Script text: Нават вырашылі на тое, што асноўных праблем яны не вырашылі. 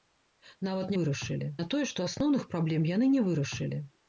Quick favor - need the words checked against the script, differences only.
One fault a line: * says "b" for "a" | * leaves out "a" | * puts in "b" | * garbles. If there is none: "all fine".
all fine